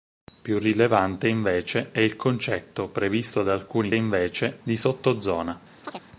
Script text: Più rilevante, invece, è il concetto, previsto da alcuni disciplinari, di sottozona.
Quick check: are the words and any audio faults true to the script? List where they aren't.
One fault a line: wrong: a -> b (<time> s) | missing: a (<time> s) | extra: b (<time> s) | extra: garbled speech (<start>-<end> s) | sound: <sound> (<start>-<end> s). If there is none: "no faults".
wrong: disciplinari -> invece (3.9 s)
sound: chirp (5.8-6.0 s)